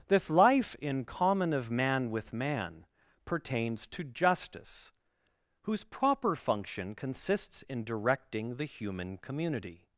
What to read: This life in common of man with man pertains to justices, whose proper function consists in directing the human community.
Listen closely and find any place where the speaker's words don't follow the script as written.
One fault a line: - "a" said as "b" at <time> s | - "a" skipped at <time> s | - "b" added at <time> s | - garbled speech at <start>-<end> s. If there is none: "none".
- "justices" said as "justice" at 4.0 s